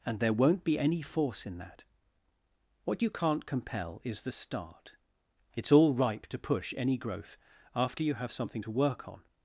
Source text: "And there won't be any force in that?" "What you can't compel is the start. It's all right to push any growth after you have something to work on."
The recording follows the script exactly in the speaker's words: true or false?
false